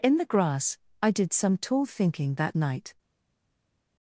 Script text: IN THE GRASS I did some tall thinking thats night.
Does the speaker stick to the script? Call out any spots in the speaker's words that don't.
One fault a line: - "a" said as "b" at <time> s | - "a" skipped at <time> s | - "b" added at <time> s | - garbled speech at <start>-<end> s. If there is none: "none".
- "thats" said as "that" at 2.4 s